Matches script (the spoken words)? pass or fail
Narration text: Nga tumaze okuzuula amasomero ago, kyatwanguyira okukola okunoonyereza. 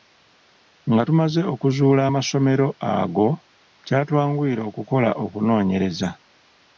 pass